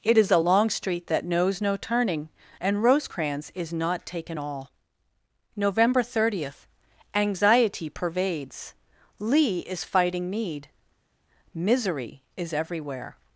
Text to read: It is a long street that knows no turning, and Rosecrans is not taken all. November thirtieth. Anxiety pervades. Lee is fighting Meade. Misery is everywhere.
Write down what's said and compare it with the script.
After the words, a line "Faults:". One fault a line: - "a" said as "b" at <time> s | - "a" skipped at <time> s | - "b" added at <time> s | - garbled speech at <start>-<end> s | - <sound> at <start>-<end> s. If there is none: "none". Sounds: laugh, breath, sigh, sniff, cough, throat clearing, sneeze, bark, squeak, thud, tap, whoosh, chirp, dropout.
It is a long street that knows no turning, and Rosecrans is not taken all. November thirtieth. Anxiety pervades. Lee is fighting Meade. Misery is everywhere.
Faults:
none